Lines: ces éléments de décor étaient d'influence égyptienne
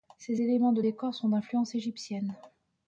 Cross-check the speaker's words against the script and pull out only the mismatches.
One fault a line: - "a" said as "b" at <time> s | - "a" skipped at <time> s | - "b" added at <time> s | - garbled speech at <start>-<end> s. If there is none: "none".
- "étaient" said as "sont" at 1.1 s